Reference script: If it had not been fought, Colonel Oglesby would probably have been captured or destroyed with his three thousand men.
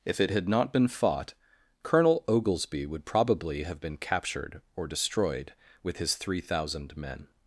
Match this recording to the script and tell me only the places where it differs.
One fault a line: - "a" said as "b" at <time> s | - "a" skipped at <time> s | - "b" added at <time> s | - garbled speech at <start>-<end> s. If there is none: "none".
none